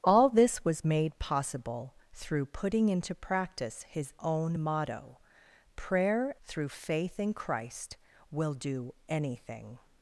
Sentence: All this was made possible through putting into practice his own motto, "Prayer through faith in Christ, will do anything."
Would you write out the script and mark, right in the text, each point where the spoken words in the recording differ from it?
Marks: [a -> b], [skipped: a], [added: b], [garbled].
All this was made possible through putting into practice his own motto, "Prayer through faith in Christ, will do anything."